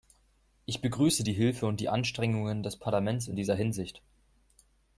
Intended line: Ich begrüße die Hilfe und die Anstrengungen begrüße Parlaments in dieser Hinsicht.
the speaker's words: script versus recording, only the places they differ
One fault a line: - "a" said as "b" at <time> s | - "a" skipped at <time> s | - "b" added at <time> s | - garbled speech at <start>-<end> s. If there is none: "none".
- "begrüße" said as "des" at 2.6 s